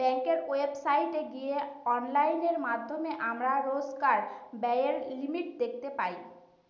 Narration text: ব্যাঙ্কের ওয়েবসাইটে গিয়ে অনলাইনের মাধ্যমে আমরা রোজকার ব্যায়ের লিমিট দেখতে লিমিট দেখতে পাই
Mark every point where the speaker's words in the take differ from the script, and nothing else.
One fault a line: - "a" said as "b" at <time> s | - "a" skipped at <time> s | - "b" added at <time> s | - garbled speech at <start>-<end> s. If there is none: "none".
- "লিমিট দেখতে" skipped at 5.9 s